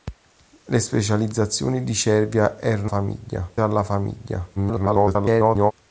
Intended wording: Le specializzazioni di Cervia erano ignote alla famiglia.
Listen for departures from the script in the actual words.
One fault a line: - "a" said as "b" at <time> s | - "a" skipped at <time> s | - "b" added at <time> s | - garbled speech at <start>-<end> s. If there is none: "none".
- "ignote" said as "famiglia" at 2.8 s
- garbled speech at 4.6-5.7 s